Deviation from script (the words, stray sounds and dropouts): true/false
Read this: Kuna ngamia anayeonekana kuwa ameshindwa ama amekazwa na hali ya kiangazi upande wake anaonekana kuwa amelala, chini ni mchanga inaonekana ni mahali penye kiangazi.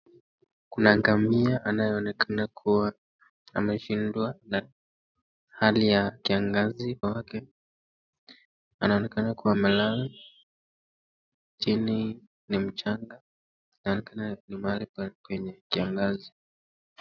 true